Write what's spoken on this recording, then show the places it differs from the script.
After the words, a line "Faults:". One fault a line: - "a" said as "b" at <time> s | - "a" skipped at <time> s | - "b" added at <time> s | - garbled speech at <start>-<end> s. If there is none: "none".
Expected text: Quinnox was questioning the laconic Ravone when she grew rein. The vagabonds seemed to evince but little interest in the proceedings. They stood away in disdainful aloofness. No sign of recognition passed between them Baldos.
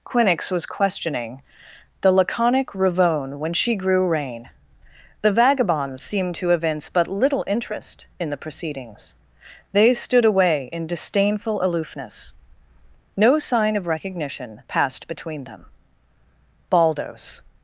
Quinnox was questioning the laconic Ravone when she grew rein. The vagabonds seemed to evince but little interest in the proceedings. They stood away in disdainful aloofness. No sign of recognition passed between them Baldos.
Faults:
none